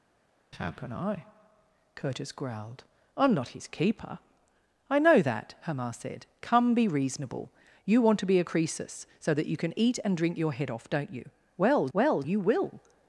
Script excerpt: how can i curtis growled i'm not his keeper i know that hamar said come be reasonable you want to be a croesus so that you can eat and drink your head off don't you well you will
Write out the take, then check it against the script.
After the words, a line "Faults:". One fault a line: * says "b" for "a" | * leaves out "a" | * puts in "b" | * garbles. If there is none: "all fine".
how can i curtis growled i'm not his keeper i know that hamar said come be reasonable you want to be a croesus so that you can eat and drink your head off don't you well well you will
Faults:
* puts in "well"